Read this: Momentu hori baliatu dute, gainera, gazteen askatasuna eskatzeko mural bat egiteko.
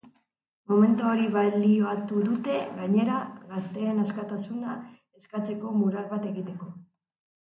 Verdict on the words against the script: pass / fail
pass